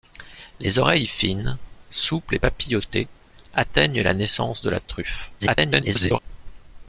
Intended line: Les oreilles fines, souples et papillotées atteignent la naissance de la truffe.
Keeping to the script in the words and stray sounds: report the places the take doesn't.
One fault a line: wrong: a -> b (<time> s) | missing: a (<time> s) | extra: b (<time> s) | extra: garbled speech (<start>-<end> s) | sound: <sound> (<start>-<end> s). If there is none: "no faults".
extra: garbled speech (5.4-6.2 s)